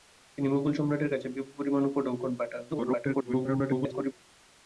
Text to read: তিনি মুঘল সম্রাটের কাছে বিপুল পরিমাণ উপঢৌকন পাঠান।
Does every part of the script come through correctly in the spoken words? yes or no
no